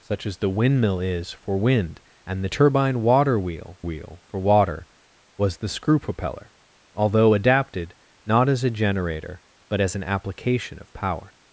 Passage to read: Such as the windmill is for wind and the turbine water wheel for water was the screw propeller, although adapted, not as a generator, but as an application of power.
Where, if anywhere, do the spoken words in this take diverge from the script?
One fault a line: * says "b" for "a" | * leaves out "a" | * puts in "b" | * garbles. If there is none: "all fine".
* puts in "wheel"